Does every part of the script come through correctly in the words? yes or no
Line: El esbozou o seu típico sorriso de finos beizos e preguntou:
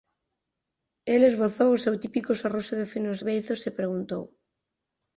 yes